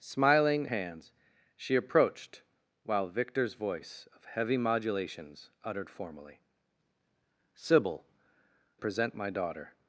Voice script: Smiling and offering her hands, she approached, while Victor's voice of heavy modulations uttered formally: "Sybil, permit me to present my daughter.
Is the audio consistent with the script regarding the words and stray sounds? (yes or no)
no